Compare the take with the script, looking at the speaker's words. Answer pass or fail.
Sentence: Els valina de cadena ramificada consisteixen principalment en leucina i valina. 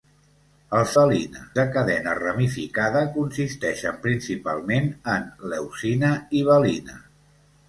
pass